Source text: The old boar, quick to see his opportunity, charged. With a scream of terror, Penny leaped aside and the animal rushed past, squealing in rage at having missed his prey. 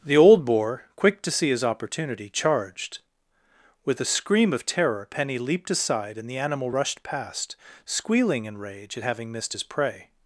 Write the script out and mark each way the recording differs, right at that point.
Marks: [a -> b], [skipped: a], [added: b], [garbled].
The old boar, quick to see his opportunity, charged. With a scream of terror, Penny leaped aside and the animal rushed past, squealing in rage at having missed his prey.